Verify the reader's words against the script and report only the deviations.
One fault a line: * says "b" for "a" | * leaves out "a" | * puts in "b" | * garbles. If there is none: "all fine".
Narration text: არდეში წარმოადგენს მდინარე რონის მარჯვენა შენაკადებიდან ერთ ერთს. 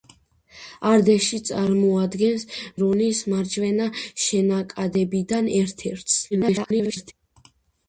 * leaves out "მდინარე"
* garbles